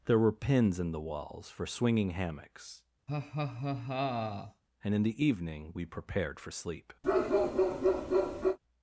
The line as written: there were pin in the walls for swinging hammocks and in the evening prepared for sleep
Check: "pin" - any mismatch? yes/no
yes